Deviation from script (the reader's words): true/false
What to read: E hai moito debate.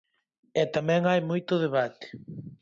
true